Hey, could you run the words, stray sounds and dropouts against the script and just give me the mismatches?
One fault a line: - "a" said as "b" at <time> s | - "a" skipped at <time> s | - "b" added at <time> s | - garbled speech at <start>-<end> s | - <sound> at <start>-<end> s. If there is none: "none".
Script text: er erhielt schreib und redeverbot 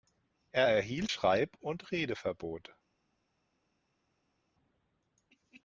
none